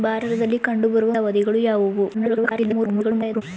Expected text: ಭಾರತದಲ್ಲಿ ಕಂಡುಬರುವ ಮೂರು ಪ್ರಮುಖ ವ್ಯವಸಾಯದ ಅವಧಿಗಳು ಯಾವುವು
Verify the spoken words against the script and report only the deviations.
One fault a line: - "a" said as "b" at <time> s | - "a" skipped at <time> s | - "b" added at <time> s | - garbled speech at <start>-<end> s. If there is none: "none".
- "ಮೂರು ಪ್ರಮುಖ ವ್ಯವಸಾಯದ" skipped at 1.1 s
- garbled speech at 2.1-3.4 s